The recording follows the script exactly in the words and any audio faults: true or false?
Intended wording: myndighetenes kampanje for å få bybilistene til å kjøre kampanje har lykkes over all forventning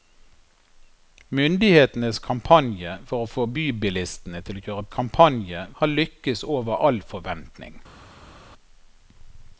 true